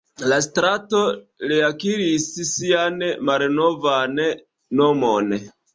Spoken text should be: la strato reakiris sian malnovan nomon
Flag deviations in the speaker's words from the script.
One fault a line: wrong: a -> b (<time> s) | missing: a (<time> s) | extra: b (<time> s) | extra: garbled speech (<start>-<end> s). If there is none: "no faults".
no faults